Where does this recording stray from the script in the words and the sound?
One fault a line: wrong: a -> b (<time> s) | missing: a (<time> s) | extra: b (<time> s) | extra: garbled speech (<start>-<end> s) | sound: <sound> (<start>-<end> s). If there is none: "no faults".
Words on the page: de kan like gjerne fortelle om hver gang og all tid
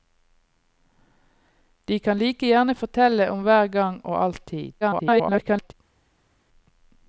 extra: garbled speech (4.8-5.7 s)